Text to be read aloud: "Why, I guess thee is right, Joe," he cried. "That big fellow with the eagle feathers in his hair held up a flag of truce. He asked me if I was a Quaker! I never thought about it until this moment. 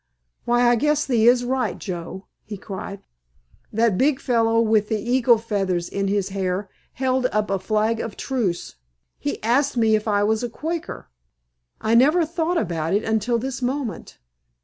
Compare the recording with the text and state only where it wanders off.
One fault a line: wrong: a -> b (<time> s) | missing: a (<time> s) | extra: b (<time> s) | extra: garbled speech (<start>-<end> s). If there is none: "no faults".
no faults